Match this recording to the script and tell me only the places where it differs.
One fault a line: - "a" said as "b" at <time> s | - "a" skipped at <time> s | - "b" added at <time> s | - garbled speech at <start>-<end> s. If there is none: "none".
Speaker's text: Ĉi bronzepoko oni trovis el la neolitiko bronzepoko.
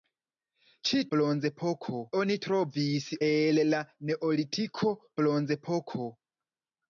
none